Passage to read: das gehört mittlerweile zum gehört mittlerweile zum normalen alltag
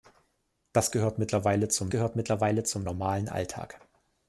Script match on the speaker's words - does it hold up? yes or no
yes